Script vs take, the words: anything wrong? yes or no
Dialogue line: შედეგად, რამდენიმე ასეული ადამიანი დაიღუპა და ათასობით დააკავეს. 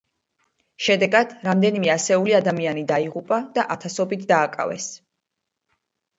no